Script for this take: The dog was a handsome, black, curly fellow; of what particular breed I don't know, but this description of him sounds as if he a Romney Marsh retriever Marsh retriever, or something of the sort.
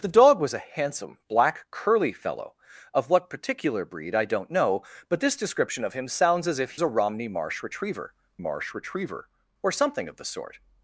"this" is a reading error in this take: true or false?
false